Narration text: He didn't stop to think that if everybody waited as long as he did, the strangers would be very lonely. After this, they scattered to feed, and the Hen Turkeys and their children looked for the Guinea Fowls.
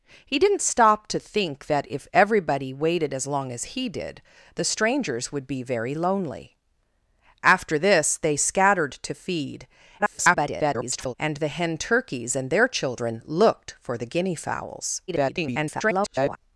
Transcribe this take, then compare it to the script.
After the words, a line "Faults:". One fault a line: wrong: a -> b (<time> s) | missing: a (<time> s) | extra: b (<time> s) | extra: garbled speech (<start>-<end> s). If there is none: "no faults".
He didn't stop to think that if everybody waited as long as he did, the strangers would be very lonely. After this, they scattered to feed, [garbled] and the Hen Turkeys and their children looked for the Guinea Fowls. [garbled]
Faults:
extra: garbled speech (10.0-11.1 s)
extra: garbled speech (15.1-16.4 s)